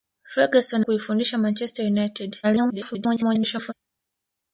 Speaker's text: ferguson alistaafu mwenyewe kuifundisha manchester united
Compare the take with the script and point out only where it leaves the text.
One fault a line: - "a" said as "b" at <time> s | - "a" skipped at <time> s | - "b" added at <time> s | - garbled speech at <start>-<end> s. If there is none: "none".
- "alistaafu mwenyewe" skipped at 0.8 s
- garbled speech at 2.4-3.7 s